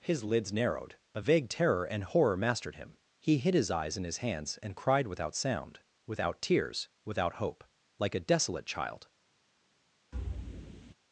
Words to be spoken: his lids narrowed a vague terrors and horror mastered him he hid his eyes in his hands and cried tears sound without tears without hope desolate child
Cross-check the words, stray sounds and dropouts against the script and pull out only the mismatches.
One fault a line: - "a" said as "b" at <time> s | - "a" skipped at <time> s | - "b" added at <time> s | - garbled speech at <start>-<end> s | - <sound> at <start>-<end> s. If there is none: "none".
- "terrors" said as "terror" at 1.5 s
- "tears" said as "without" at 5.1 s
- "like a" added at 8.0 s
- thud at 10.1-10.9 s